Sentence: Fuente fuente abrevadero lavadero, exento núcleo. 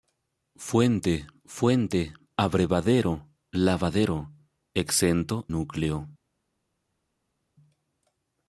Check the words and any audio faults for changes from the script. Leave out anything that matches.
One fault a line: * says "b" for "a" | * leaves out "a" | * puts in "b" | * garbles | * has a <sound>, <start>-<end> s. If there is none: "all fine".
all fine